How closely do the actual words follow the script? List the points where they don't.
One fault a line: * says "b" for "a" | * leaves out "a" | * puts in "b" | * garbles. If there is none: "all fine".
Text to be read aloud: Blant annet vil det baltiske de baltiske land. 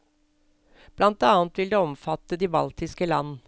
* says "omfatte" for "baltiske"